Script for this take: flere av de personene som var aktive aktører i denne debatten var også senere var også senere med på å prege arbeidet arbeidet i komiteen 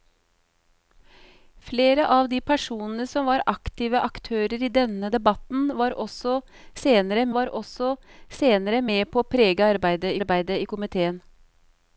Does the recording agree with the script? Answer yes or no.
yes